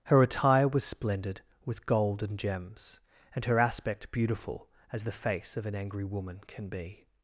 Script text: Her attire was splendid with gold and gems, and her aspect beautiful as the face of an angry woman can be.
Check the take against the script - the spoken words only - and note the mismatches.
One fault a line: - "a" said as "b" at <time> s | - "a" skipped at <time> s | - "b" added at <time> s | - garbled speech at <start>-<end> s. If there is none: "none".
none